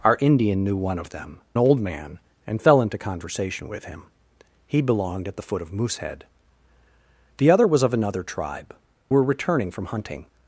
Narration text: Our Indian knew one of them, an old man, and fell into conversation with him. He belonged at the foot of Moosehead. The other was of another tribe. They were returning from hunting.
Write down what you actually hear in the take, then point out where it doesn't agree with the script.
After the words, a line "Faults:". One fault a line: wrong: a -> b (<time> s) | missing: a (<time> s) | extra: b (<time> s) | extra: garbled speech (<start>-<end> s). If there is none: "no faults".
Our Indian knew one of them, old man, and fell into conversation with him. He belonged at the foot of Moosehead. The other was of another tribe. Were returning from hunting.
Faults:
missing: an (1.4 s)
missing: They (8.7 s)